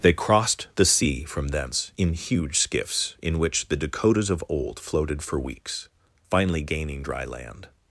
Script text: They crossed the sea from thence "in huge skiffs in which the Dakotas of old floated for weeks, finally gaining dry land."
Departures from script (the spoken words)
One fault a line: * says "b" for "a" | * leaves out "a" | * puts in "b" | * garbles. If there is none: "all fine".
all fine